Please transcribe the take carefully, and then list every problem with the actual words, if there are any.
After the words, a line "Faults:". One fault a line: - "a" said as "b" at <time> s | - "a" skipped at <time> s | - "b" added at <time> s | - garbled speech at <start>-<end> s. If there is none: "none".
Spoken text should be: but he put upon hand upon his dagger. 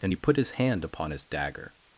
and he put his hand upon his dagger.
Faults:
- "but" said as "and" at 0.0 s
- "upon" said as "his" at 0.4 s